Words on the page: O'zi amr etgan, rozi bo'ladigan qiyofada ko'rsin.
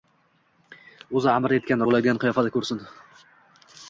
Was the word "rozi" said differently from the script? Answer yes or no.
yes